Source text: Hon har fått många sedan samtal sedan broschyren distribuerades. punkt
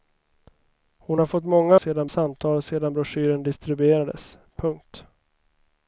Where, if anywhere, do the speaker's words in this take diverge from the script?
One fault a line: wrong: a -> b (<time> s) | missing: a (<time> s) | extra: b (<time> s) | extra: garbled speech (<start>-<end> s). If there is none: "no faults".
no faults